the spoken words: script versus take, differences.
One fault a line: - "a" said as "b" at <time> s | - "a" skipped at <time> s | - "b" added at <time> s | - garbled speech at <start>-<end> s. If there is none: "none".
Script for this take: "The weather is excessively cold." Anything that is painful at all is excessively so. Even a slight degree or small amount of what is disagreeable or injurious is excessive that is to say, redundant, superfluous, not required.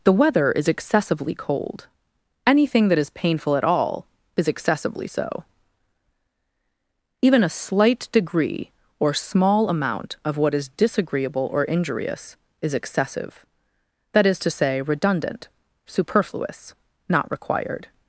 none